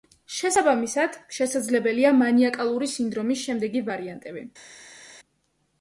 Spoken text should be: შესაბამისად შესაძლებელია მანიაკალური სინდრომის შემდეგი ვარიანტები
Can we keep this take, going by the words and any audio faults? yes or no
yes